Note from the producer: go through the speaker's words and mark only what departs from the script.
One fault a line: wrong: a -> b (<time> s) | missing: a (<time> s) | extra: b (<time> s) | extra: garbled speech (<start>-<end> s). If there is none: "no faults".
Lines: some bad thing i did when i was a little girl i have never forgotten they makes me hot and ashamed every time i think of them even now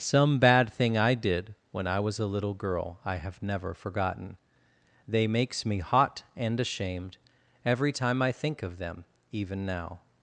no faults